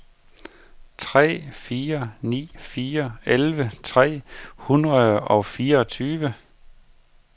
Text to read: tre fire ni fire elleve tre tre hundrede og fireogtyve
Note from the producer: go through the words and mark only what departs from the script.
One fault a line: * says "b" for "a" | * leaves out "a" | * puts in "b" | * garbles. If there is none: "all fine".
* leaves out "tre"